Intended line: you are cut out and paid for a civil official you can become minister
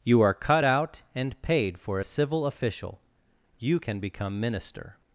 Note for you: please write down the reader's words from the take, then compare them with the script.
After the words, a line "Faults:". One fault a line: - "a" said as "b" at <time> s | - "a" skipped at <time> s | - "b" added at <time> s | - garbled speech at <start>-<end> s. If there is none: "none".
you are cut out and paid for a civil official you can become minister
Faults:
none